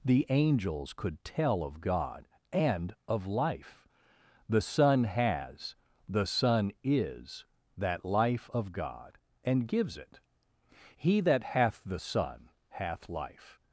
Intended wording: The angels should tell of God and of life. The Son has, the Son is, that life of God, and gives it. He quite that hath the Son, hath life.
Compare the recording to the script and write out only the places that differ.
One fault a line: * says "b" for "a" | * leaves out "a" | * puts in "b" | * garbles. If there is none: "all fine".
* says "could" for "should"
* leaves out "quite"